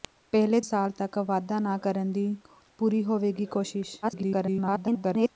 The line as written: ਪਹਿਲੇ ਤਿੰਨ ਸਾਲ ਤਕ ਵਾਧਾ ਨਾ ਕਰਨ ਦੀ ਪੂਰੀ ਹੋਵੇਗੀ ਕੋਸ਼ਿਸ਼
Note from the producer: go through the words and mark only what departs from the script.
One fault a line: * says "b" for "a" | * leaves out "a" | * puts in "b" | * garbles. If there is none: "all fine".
* leaves out "ਤਿੰਨ"
* garbles